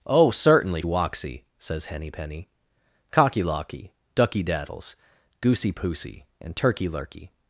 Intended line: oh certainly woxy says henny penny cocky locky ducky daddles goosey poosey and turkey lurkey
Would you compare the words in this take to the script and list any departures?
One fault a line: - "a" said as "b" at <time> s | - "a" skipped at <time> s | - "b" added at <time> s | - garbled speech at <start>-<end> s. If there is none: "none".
none